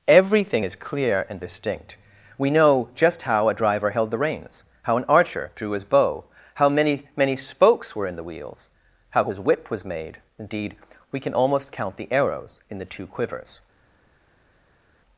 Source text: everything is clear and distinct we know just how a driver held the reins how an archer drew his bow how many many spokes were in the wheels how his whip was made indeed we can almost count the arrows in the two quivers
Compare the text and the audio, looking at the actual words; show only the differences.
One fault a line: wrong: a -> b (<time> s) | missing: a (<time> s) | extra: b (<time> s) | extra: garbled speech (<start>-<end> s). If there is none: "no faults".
no faults